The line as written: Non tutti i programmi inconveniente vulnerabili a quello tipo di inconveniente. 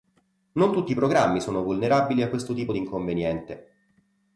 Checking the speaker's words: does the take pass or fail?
fail